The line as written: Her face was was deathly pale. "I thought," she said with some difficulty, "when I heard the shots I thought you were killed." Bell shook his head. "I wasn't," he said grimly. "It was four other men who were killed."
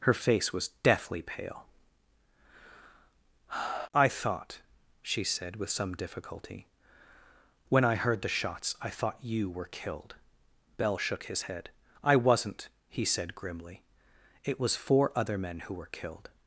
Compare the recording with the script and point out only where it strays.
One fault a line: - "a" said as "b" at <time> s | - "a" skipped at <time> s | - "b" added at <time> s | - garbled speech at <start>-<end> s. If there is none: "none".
- "was" skipped at 0.7 s